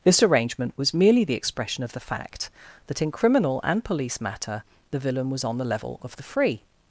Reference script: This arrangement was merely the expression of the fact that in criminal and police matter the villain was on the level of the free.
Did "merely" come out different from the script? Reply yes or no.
no